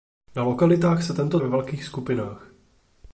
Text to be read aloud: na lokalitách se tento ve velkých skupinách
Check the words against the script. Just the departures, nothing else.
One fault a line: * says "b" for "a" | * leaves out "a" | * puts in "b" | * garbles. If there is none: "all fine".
all fine